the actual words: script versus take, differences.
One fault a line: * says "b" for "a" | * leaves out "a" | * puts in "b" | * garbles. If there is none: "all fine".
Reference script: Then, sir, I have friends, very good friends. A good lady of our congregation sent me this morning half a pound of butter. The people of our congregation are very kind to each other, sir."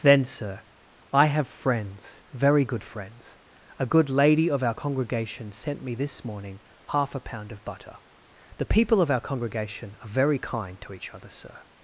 all fine